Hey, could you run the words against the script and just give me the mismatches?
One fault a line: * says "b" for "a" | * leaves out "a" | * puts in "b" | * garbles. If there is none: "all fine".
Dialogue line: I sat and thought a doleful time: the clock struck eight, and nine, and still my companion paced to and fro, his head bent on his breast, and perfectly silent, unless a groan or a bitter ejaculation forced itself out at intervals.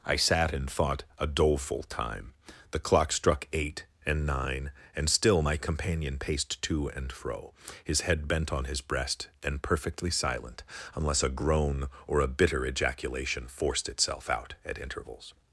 all fine